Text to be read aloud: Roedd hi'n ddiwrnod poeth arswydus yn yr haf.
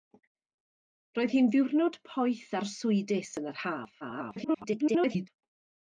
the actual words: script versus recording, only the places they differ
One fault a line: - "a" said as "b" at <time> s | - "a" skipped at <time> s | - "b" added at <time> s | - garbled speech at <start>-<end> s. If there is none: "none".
- garbled speech at 4.0-5.3 s